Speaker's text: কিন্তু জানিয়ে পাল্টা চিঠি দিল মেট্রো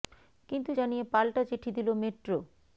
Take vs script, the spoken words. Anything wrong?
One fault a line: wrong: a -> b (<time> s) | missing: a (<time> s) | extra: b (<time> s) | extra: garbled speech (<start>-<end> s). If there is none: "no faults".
no faults